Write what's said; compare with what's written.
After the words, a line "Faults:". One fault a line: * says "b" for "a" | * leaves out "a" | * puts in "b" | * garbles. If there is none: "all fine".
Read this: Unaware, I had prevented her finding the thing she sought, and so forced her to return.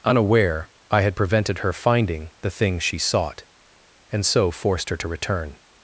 Unaware, I had prevented her finding the thing she sought, and so forced her to return.
Faults:
all fine